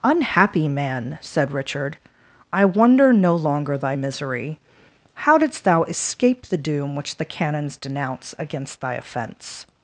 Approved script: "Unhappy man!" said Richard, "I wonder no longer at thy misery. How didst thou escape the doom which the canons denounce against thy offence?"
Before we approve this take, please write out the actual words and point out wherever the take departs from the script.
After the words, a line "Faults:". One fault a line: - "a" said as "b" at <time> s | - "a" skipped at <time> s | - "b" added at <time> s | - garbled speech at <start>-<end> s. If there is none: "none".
"Unhappy man!" said Richard, "I wonder no longer thy misery. How didst thou escape the doom which the canons denounce against thy offence?"
Faults:
- "at" skipped at 3.8 s